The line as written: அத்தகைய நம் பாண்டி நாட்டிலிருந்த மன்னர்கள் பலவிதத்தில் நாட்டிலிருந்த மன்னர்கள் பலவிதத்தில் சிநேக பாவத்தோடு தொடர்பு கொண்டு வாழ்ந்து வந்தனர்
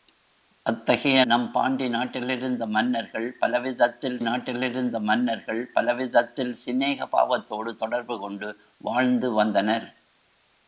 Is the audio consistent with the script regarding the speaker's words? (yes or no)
yes